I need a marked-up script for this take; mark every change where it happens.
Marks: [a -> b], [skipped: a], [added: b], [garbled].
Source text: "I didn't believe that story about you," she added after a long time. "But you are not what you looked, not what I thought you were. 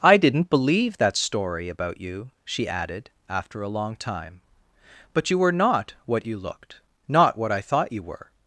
"I didn't believe that story about you," she added after a long time. "But you [are -> were] not what you looked, not what I thought you were.